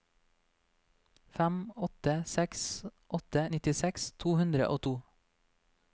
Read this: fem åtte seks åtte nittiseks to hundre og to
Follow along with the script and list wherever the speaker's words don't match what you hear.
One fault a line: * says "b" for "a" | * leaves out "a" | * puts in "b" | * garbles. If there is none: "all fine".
all fine